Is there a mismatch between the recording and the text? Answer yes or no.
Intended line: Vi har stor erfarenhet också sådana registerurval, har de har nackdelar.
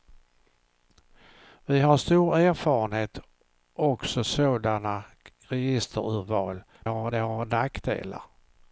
no